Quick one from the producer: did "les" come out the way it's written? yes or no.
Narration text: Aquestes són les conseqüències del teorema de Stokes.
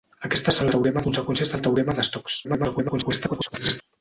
no